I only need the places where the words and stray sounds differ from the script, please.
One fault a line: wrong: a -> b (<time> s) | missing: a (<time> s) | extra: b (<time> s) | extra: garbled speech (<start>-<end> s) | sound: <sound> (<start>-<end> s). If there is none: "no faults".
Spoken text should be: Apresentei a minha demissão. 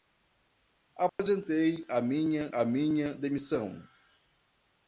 sound: dropout (1.1-1.2 s)
extra: a minha (2.5 s)